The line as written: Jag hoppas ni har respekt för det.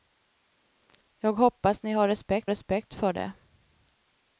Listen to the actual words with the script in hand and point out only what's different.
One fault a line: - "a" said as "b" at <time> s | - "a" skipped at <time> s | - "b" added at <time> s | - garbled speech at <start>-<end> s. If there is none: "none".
- "respekt" added at 2.5 s